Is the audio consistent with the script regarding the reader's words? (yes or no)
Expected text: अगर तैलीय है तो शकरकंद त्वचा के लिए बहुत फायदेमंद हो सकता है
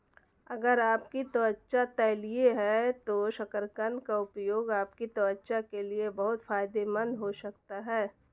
no